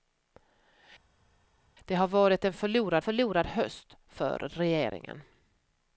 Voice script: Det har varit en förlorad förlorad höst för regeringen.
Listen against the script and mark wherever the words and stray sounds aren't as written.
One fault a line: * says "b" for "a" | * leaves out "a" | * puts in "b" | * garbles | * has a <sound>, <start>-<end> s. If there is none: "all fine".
all fine